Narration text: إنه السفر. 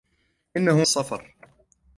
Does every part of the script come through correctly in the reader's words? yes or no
yes